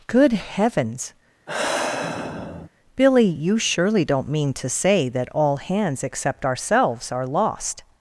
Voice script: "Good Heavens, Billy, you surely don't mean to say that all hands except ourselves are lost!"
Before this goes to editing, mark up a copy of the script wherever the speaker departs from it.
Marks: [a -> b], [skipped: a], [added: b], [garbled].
"Good Heavens, Billy, you surely don't mean to say that all hands except ourselves are lost!"